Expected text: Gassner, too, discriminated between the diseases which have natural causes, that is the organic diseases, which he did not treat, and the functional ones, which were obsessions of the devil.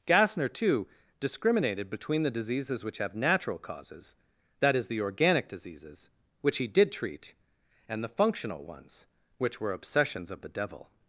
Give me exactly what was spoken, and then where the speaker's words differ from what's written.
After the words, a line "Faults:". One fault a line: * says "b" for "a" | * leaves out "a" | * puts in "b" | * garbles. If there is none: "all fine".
Gassner, too, discriminated between the diseases which have natural causes, that is the organic diseases, which he did treat, and the functional ones, which were obsessions of the devil.
Faults:
* leaves out "not"